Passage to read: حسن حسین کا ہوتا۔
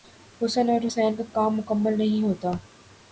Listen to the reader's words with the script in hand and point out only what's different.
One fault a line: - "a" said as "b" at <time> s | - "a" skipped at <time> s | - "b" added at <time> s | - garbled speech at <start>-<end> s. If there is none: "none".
- "اور" added at 0.7 s
- "کام مکمل نہیں" added at 1.3 s